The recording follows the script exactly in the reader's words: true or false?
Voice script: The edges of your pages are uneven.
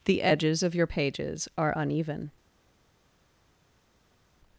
true